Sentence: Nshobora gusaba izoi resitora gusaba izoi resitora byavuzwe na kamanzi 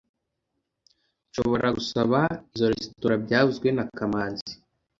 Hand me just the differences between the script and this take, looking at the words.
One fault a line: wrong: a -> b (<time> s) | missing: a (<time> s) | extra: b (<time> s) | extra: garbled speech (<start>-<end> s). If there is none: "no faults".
missing: gusaba izoi resitora (3.1 s)